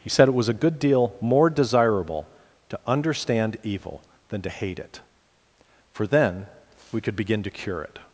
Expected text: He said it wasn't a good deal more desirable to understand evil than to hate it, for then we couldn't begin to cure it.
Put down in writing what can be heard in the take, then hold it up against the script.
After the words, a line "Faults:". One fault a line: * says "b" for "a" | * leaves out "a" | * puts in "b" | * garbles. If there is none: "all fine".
He said it was a good deal more desirable to understand evil than to hate it, for then we could begin to cure it.
Faults:
* says "was" for "wasn't"
* says "could" for "couldn't"